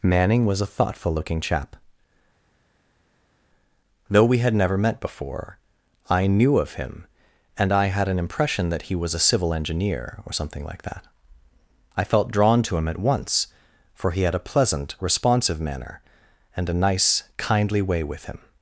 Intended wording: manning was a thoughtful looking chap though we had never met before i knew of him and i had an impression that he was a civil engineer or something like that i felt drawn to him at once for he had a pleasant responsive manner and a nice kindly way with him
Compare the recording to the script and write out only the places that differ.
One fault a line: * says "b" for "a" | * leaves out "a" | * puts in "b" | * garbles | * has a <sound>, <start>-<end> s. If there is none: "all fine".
all fine